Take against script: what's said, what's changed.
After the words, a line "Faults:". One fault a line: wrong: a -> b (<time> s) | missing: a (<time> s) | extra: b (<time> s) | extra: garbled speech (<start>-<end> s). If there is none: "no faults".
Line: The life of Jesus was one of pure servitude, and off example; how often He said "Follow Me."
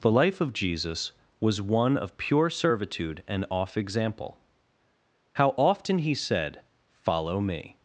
The life of Jesus was one of pure servitude, and off example; how often He said "Follow Me."
Faults:
no faults